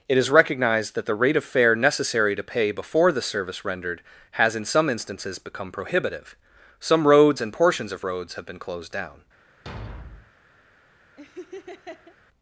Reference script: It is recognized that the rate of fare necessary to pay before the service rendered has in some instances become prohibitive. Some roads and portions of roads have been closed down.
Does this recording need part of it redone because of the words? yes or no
no